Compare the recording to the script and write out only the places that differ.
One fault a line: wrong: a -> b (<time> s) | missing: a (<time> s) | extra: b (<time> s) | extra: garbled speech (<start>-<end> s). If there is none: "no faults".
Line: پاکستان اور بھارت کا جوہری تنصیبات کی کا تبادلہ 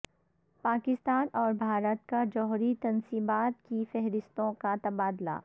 extra: فہرستوں (3.9 s)